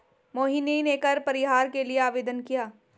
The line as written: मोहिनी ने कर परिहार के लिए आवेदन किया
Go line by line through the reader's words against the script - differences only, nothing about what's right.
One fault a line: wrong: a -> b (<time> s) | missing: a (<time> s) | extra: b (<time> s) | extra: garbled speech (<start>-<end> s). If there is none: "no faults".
no faults